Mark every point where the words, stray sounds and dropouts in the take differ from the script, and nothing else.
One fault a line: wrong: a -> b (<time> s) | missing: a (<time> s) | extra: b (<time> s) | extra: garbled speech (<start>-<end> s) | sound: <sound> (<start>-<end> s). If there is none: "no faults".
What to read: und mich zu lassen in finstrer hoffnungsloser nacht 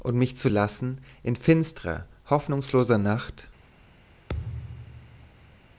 sound: thud (4.3-5.6 s)